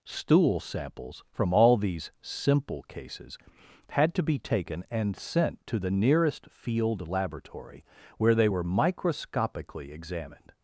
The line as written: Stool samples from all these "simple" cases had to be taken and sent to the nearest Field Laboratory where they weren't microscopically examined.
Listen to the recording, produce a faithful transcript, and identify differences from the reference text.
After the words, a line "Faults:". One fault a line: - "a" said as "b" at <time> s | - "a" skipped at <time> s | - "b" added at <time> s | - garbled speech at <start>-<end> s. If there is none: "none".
Stool samples from all these "simple" cases had to be taken and sent to the nearest Field Laboratory where they were microscopically examined.
Faults:
- "weren't" said as "were" at 8.5 s